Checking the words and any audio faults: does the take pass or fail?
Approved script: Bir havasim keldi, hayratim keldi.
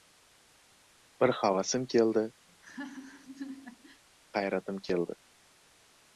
fail